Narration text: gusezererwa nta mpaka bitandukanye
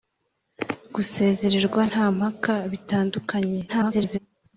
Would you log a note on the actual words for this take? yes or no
yes